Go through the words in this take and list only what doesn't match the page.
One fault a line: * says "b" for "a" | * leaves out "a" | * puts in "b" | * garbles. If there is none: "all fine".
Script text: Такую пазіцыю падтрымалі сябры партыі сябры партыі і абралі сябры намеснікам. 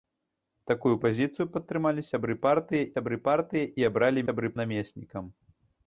all fine